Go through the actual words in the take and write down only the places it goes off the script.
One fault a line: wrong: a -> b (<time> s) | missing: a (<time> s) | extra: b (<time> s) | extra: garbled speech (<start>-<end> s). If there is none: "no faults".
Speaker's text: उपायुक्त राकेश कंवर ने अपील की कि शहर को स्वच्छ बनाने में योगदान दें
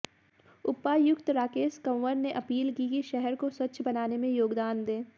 no faults